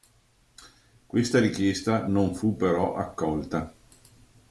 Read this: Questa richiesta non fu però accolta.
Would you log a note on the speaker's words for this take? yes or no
no